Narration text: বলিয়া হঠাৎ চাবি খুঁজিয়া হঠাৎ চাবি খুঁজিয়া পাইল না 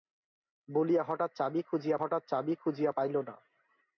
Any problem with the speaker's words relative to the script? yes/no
no